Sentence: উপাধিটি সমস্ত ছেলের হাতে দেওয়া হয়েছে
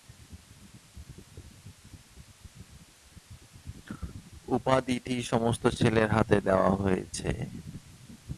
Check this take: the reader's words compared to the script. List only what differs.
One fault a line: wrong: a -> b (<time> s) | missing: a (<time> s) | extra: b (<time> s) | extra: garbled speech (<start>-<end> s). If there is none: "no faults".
no faults